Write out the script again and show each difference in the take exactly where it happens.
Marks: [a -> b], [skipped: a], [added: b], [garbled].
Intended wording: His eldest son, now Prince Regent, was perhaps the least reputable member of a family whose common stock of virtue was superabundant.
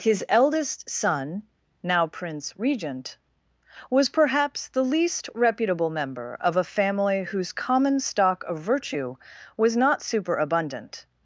His eldest son, now Prince Regent, was perhaps the least reputable member of a family whose common stock of virtue was [added: not] superabundant.